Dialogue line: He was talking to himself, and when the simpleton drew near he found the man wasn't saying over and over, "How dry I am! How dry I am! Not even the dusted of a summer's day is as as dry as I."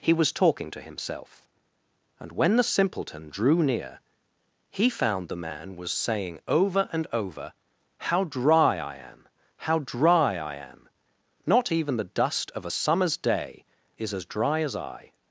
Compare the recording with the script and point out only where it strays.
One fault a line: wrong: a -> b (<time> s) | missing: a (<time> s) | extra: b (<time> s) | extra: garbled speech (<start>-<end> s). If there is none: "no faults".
wrong: wasn't -> was (5.8 s)
wrong: dusted -> dust (12.0 s)
missing: as (14.2 s)